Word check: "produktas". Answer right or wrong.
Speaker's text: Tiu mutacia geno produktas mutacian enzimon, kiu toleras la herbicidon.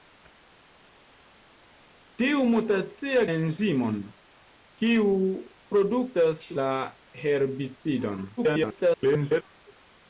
wrong